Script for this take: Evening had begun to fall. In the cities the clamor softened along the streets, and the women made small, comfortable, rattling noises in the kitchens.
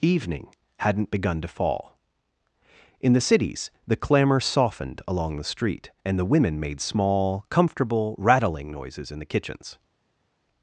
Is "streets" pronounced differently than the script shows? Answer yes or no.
yes